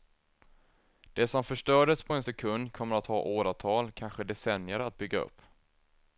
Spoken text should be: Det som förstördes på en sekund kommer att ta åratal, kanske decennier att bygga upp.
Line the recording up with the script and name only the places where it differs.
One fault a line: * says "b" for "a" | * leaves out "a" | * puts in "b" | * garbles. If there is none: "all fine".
all fine